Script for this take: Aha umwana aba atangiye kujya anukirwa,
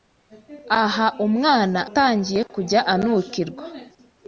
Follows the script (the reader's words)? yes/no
no